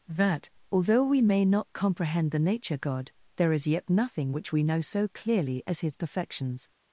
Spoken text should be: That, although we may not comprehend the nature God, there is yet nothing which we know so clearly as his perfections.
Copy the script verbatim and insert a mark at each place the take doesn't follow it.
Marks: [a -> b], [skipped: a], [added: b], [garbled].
That, although we may not comprehend the nature God, there is yet nothing which we know so clearly as his perfections.